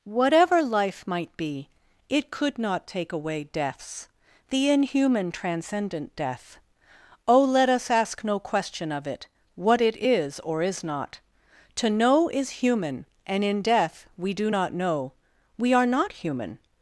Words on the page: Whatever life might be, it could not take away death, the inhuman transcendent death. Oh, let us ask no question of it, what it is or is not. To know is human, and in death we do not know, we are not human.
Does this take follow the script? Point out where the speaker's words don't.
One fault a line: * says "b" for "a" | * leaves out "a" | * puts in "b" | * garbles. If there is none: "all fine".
* says "deaths" for "death"